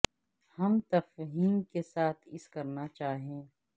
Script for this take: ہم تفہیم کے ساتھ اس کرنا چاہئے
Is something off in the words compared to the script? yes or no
no